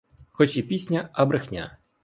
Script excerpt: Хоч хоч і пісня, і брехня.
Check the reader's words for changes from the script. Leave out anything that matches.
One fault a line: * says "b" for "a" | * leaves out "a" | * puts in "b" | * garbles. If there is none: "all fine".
* leaves out "хоч"
* says "а" for "і"